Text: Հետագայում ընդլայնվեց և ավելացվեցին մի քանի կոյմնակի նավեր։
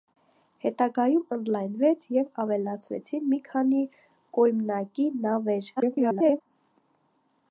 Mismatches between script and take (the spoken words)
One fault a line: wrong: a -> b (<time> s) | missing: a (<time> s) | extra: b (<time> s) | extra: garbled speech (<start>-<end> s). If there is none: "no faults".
extra: garbled speech (5.8-6.4 s)